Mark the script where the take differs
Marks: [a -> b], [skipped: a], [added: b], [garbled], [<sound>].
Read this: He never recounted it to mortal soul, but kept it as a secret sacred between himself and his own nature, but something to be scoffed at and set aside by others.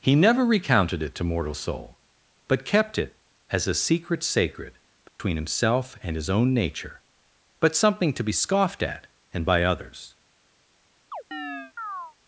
He never recounted it to mortal soul, but kept it as a secret sacred between [dropout] himself and his own nature, but something to be scoffed at and [skipped: set aside] by others. [chirp]